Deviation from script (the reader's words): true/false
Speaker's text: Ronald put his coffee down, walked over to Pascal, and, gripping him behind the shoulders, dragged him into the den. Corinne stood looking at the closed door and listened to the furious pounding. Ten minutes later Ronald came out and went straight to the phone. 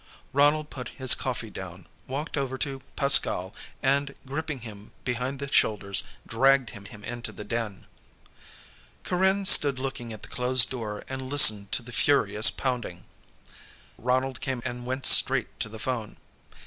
true